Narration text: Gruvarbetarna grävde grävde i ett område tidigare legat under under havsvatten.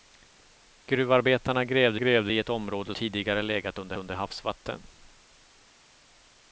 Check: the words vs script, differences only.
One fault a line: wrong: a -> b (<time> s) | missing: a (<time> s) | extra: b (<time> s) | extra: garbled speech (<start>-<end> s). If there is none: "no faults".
no faults